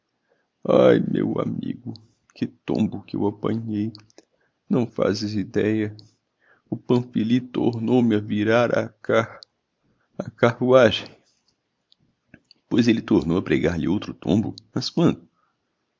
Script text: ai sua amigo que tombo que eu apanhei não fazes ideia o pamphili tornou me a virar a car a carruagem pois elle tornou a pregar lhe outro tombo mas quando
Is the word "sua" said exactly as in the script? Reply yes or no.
no